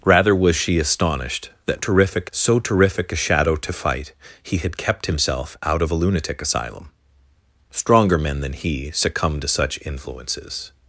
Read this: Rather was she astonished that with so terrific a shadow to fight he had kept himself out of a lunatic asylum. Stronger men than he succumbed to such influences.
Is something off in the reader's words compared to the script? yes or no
yes